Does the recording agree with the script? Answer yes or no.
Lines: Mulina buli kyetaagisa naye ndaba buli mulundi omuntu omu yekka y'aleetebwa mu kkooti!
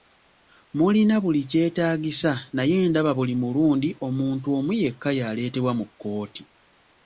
yes